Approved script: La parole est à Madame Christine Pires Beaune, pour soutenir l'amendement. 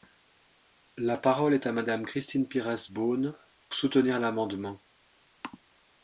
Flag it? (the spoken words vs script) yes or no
yes